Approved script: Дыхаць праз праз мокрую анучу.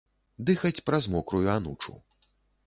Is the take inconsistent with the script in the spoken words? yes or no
yes